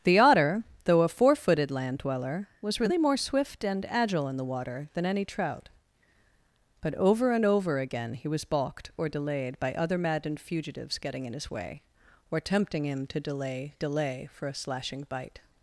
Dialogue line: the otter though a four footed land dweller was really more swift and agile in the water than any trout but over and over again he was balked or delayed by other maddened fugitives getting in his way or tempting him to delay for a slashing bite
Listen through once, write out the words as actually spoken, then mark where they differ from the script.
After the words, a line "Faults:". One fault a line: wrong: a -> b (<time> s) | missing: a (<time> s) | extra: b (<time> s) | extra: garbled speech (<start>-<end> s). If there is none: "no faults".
the otter though a four footed land dweller was really more swift and agile in the water than any trout but over and over again he was balked or delayed by other maddened fugitives getting in his way or tempting him to delay delay for a slashing bite
Faults:
extra: delay (13.8 s)